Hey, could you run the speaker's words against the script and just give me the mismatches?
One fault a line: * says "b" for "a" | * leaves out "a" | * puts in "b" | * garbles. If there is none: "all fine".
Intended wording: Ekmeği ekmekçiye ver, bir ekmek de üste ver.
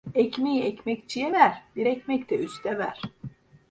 all fine